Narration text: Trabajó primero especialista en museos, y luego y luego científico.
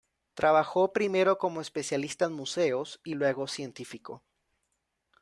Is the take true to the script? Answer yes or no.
no